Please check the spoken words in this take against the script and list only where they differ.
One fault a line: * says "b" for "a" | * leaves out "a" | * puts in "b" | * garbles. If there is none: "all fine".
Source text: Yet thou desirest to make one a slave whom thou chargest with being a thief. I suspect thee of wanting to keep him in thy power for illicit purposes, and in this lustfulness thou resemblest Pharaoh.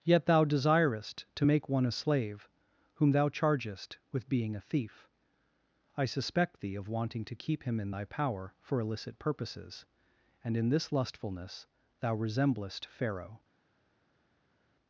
all fine